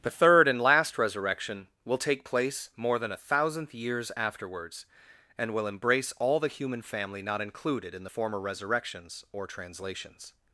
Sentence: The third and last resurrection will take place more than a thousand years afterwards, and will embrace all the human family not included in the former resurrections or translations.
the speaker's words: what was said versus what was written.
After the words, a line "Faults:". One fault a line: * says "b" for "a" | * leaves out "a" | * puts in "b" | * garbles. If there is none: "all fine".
The third and last resurrection will take place more than a thousandth years afterwards, and will embrace all the human family not included in the former resurrections or translations.
Faults:
* says "thousandth" for "thousand"